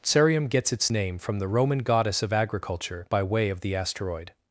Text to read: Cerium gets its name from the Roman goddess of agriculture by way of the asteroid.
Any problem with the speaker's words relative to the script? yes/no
no